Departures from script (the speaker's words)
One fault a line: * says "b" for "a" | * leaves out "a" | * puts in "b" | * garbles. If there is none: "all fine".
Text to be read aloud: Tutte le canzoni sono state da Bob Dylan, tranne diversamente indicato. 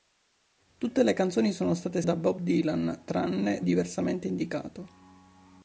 all fine